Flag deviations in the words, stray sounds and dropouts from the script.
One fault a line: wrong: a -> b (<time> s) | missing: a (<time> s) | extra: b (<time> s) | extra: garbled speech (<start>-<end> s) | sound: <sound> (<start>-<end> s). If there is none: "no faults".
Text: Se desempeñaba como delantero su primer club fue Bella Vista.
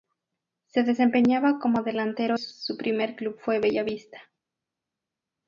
no faults